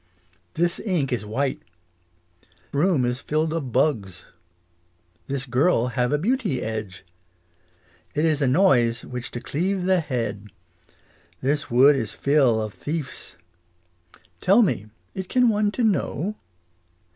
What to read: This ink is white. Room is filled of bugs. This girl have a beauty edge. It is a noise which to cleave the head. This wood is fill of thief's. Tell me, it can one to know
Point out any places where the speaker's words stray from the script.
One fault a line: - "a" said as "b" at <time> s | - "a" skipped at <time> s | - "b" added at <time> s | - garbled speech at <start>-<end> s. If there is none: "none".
none